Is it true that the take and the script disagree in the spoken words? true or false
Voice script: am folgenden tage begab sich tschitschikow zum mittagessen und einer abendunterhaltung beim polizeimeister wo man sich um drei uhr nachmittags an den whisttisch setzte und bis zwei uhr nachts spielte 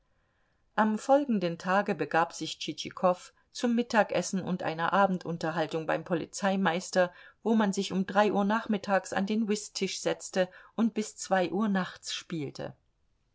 false